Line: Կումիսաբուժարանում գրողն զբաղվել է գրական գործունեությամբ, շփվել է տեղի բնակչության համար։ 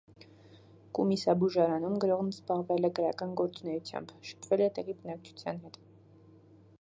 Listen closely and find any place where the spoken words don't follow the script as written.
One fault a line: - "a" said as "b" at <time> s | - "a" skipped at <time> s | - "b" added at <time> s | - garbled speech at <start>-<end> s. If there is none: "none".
- "համար" said as "հետ" at 5.7 s